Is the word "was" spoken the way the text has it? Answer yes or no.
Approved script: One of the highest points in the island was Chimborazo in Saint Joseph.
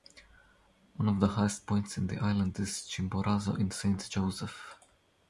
no